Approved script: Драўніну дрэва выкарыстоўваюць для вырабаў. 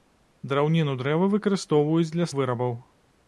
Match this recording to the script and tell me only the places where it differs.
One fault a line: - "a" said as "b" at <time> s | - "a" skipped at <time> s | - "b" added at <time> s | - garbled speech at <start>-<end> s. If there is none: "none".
none